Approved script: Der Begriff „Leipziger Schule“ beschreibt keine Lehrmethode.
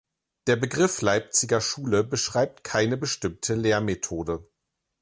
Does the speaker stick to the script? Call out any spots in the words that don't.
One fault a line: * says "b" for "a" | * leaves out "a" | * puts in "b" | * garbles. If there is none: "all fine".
* puts in "bestimmte"